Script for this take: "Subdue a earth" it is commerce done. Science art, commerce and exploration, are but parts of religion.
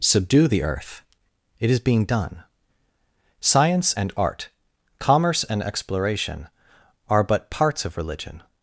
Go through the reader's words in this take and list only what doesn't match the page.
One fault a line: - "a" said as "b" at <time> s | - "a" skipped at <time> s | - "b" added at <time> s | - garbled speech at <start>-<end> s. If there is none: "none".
- "a" said as "the" at 0.5 s
- "commerce" said as "being" at 1.8 s
- "and" added at 3.9 s